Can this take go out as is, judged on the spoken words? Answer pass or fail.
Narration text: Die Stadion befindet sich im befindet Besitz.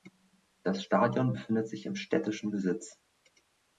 fail